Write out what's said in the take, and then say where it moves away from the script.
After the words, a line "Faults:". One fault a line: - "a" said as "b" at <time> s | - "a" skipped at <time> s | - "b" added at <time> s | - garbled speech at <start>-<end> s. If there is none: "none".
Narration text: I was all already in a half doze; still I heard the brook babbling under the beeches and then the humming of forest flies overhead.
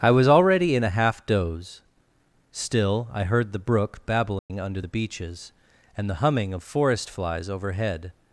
I was already in a half doze; still I heard the brook babbling under the beeches and the humming of forest flies overhead.
Faults:
- "all" skipped at 0.3 s
- "then" skipped at 6.1 s